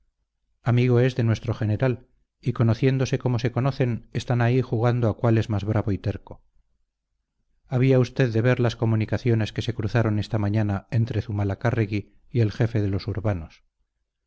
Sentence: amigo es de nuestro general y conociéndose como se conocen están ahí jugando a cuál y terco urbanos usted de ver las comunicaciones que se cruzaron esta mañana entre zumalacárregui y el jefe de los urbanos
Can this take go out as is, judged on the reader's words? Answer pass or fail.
fail